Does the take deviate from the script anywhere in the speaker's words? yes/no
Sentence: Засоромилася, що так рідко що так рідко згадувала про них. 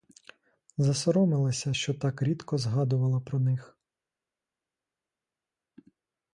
yes